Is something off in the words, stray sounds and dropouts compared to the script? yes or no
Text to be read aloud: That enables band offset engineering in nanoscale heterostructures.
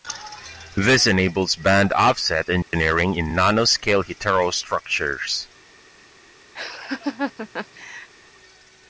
yes